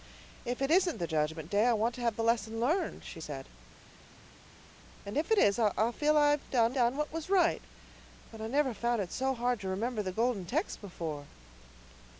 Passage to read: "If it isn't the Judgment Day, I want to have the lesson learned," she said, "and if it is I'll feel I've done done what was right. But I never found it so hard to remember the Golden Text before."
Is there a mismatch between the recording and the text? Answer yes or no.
no